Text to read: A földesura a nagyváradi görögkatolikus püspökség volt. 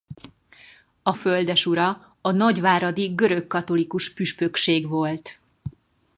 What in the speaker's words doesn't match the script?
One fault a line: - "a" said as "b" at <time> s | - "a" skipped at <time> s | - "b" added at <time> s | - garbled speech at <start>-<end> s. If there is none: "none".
none